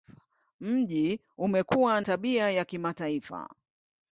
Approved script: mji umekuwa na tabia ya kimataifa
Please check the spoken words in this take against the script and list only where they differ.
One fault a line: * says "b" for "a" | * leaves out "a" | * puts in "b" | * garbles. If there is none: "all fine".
* leaves out "na"